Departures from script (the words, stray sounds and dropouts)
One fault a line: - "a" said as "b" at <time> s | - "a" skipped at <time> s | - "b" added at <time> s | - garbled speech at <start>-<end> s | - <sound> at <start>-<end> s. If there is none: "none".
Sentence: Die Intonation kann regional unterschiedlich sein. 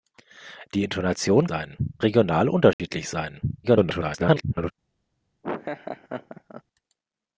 - "kann" said as "sein" at 1.4 s
- dropout at 2.7-2.8 s
- garbled speech at 3.6-4.7 s
- laugh at 5.4-6.6 s